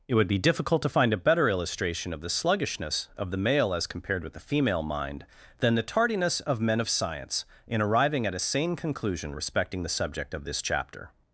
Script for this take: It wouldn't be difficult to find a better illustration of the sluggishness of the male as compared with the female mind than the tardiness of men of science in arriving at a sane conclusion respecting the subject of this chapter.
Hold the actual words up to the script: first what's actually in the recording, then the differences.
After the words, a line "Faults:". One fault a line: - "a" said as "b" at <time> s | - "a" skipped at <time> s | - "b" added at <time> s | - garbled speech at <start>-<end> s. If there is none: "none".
It would be difficult to find a better illustration of the sluggishness of the male as compared with the female mind than the tardiness of men of science in arriving at a sane conclusion respecting the subject of this chapter.
Faults:
- "wouldn't" said as "would" at 0.1 s